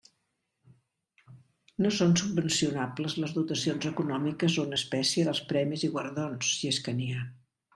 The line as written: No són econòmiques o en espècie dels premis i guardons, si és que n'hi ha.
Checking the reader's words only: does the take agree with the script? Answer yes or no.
no